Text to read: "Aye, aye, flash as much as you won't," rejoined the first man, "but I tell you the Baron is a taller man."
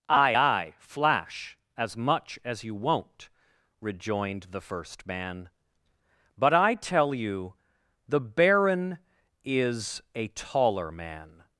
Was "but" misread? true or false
false